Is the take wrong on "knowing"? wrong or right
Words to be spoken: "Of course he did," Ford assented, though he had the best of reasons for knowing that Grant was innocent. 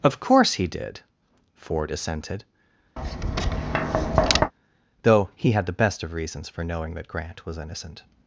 right